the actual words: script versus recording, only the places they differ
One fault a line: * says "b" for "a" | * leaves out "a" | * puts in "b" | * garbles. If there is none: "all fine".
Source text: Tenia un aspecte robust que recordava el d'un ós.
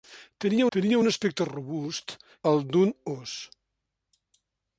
* puts in "tenia"
* leaves out "que recordava"